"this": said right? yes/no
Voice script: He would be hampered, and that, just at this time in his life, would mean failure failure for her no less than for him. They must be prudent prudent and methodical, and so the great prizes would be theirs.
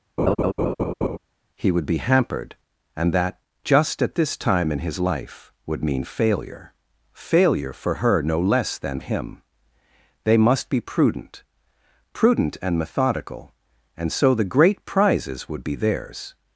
yes